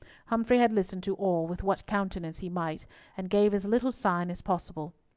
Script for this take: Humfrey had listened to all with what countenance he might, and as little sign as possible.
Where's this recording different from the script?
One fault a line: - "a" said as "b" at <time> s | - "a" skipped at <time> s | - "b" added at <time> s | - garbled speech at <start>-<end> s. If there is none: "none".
- "gave" added at 3.3 s